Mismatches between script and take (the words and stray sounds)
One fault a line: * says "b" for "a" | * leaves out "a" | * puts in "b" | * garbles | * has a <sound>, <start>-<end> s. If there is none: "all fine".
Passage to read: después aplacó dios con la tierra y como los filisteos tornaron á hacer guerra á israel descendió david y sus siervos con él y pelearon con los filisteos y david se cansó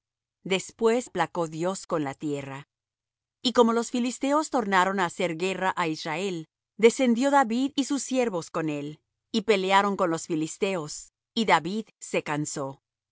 all fine